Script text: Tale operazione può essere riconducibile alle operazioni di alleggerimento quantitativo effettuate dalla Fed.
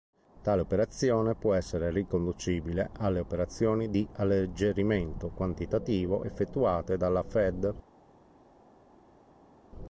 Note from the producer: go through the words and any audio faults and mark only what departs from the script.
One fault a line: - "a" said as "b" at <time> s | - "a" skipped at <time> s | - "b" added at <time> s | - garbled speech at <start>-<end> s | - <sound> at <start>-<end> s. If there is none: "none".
none